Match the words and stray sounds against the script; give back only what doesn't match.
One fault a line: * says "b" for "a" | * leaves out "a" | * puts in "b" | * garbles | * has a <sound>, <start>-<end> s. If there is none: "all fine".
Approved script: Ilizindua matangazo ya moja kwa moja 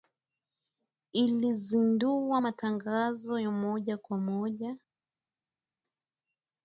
all fine